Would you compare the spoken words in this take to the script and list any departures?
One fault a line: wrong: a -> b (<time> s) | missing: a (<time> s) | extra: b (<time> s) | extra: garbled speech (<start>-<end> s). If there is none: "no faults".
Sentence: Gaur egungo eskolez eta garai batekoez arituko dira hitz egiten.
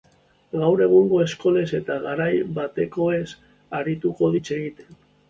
missing: dira (4.3 s)